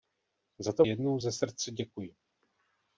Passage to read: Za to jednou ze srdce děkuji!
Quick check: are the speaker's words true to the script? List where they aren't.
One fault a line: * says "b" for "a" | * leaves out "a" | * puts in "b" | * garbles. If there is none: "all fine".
all fine